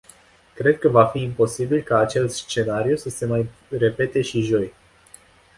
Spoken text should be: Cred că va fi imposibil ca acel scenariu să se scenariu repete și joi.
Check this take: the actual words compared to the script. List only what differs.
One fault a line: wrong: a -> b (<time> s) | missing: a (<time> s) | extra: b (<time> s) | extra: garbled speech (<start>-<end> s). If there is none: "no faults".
wrong: scenariu -> mai (3.3 s)